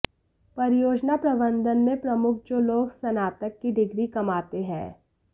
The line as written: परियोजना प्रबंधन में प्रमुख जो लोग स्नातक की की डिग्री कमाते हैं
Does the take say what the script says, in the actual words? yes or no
no